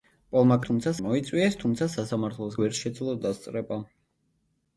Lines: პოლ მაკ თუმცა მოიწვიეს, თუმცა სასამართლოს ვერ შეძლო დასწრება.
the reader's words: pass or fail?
pass